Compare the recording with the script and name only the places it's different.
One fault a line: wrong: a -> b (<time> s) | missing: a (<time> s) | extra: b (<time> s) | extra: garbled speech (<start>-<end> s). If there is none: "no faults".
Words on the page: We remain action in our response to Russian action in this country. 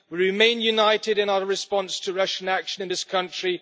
wrong: action -> united (0.6 s)